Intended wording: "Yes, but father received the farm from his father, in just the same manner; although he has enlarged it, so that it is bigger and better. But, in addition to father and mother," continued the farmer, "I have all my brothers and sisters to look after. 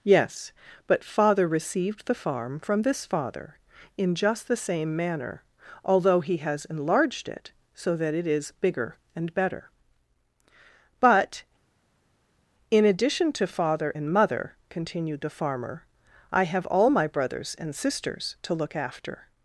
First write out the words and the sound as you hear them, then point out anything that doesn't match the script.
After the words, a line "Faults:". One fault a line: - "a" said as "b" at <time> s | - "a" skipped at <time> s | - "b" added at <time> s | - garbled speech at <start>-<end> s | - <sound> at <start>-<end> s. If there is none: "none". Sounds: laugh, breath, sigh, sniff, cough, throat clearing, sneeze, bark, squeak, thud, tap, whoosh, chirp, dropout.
"Yes, but father received the farm from this father, in just the same manner; although he has enlarged it, so that it is bigger and better. But, in addition to father and mother," continued the farmer, "I have all my brothers and sisters to look after.
Faults:
- "his" said as "this" at 2.8 s